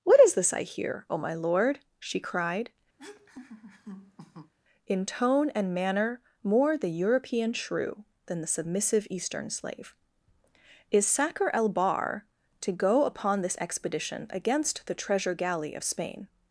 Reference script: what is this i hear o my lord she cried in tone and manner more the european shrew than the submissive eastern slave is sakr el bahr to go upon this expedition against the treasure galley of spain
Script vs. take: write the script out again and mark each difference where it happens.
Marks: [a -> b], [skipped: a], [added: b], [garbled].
what is this i hear o my lord she cried in tone and manner more the european shrew than the submissive eastern slave is sakr el bahr to go upon this expedition against the treasure galley of spain